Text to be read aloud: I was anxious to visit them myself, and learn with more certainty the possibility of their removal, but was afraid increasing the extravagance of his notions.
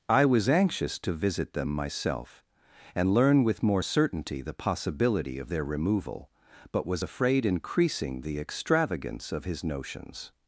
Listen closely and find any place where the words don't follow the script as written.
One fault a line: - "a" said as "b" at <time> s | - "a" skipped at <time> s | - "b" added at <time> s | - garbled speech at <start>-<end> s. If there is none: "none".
none